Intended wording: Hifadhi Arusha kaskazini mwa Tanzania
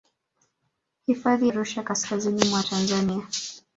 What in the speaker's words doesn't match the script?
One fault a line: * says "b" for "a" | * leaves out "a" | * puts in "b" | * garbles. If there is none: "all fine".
all fine